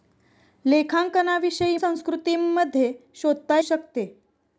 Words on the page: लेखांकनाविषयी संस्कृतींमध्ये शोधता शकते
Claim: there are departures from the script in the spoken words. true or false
false